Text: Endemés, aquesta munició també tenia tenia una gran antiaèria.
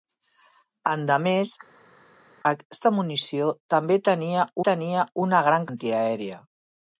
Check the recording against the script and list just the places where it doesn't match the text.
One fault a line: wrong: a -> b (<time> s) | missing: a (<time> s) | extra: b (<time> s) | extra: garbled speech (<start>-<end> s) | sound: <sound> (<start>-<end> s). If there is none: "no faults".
no faults